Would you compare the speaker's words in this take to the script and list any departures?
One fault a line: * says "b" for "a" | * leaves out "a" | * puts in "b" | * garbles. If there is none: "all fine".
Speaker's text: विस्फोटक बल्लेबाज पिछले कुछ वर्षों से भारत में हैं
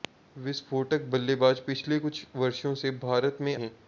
all fine